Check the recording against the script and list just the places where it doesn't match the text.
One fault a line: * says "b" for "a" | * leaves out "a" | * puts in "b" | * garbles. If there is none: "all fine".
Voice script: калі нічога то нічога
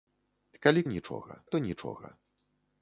all fine